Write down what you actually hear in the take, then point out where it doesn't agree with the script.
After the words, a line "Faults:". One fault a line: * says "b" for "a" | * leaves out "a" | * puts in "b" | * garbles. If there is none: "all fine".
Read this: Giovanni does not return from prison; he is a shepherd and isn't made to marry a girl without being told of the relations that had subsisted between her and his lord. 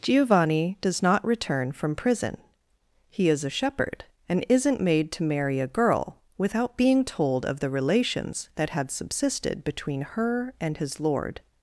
Giovanni does not return from prison; he is a shepherd and isn't made to marry a girl without being told of the relations that had subsisted between her and his lord.
Faults:
all fine